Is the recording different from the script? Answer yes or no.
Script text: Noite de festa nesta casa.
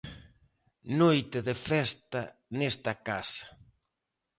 no